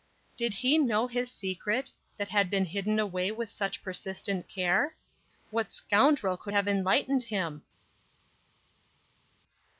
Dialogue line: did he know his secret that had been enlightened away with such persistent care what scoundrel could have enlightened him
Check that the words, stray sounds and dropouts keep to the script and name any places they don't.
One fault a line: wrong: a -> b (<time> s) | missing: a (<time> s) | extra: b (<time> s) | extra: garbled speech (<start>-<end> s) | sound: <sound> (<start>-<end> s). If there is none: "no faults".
wrong: enlightened -> hidden (2.6 s)